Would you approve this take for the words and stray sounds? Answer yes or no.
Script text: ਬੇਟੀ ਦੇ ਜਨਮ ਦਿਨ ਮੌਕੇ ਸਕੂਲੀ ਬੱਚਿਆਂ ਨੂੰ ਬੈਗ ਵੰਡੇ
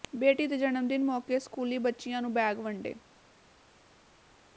yes